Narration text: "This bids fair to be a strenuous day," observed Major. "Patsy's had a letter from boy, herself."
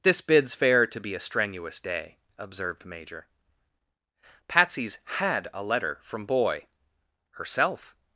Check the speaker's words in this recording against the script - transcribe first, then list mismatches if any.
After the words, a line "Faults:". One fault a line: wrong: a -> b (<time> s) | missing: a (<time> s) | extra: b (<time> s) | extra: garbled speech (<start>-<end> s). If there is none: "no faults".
"This bids fair to be a strenuous day," observed Major. "Patsy's had a letter from boy, herself."
Faults:
no faults